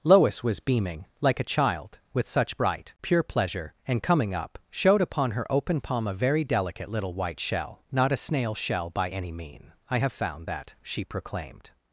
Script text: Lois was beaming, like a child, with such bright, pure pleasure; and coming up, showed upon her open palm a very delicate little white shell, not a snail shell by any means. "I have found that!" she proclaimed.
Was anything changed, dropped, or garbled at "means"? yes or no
yes